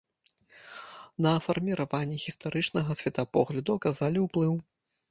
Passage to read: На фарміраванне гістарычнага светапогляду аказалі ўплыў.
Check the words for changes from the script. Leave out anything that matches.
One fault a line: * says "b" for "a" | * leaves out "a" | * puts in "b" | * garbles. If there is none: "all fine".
all fine